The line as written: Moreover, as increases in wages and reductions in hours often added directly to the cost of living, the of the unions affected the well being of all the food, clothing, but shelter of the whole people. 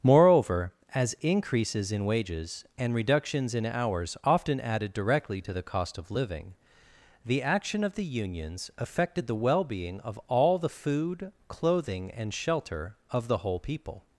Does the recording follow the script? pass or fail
fail